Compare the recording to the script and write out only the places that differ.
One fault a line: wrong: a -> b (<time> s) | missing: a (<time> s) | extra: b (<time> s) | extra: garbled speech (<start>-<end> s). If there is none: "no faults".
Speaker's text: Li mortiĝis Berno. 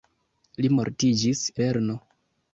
no faults